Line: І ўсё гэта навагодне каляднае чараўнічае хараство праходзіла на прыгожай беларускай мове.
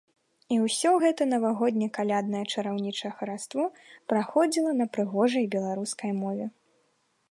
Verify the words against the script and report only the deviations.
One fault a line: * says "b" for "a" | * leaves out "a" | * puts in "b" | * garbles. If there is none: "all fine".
all fine